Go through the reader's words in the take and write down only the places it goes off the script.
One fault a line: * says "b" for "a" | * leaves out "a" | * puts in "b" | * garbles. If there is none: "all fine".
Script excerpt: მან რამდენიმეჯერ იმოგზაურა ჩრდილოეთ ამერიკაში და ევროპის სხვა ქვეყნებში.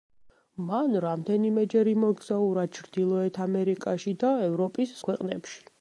* leaves out "სხვა"